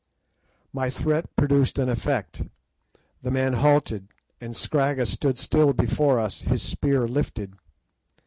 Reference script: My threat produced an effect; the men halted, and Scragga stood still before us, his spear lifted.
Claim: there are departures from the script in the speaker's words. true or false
false